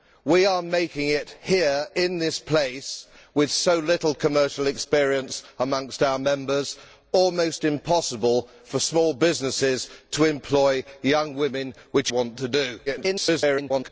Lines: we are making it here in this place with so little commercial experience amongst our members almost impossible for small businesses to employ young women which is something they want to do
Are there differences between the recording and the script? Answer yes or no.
yes